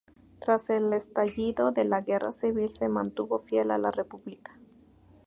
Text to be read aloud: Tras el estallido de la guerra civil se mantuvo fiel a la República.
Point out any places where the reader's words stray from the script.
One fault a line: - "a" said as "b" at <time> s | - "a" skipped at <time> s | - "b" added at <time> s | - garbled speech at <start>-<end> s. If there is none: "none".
none